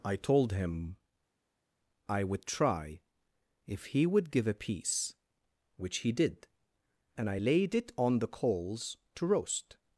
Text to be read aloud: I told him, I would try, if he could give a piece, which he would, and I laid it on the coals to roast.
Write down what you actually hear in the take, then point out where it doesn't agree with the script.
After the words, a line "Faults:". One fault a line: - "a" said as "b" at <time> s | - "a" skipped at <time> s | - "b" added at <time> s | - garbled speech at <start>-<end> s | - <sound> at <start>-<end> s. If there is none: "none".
I told him, I would try, if he would give a piece, which he did, and I laid it on the coals to roast.
Faults:
- "could" said as "would" at 4.1 s
- "would" said as "did" at 6.1 s